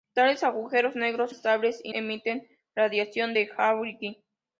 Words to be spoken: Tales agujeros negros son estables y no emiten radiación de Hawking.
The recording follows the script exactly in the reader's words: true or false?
false